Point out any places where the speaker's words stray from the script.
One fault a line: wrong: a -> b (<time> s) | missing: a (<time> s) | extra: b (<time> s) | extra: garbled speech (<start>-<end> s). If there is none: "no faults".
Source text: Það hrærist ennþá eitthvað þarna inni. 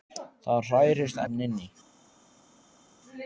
missing: ennþá eitthvað (1.2 s)